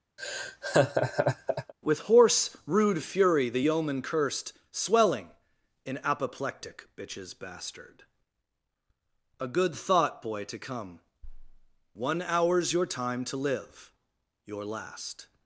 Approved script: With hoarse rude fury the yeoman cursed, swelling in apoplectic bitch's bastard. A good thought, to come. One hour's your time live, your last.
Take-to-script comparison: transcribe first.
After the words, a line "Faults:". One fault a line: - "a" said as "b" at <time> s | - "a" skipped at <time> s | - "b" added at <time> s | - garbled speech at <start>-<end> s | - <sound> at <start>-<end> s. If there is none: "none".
With hoarse rude fury the yeoman cursed, swelling in apoplectic bitch's bastard. A good thought, boy, to come. One hour's your time to live, your last.
Faults:
- laugh at 0.2-1.7 s
- "boy" added at 10.2 s
- "to" added at 13.3 s